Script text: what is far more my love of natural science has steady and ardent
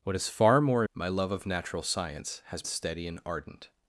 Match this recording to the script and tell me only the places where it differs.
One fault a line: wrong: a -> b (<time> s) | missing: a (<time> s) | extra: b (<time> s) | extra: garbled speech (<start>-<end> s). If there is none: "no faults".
no faults